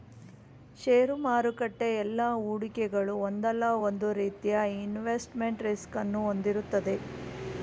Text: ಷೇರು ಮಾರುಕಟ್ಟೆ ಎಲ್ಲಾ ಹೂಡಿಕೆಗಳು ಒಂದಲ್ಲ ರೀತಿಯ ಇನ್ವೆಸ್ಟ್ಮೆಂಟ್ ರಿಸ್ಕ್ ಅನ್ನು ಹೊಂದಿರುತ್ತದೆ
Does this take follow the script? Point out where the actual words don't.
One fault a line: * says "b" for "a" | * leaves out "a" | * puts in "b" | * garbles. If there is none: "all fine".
* puts in "ಒಂದು"